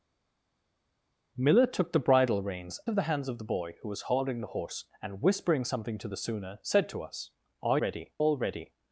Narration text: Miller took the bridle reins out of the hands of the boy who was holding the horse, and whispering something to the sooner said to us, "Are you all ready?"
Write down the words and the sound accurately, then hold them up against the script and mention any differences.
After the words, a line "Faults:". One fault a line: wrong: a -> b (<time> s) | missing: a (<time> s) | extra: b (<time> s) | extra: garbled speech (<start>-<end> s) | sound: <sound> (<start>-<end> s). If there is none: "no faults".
Miller took the bridle reins of the hands of the boy who was holding the horse, and whispering something to the sooner said to us, "Are ready all ready?"
Faults:
missing: out (2.8 s)
wrong: you -> ready (7.8 s)